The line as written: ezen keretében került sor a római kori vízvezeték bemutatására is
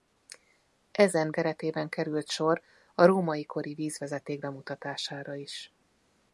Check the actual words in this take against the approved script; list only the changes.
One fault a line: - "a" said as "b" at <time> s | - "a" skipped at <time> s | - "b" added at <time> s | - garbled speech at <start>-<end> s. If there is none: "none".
none